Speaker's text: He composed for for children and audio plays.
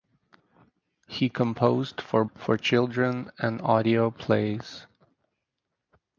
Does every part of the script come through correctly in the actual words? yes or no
yes